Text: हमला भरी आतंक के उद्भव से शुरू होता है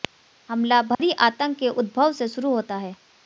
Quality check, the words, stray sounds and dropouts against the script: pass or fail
fail